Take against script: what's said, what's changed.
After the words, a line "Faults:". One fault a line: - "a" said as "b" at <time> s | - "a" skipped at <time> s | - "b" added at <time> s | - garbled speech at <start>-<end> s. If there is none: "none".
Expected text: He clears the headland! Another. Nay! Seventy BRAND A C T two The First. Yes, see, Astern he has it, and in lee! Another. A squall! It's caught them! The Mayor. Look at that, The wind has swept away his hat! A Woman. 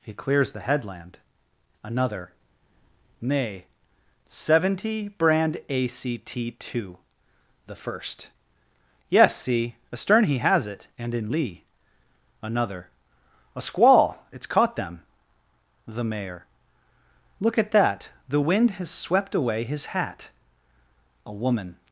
He clears the headland! Another. Nay! Seventy BRAND A C T two The First. Yes, see, Astern he has it, and in lee! Another. A squall! It's caught them! The Mayor. Look at that, The wind has swept away his hat! A Woman.
Faults:
none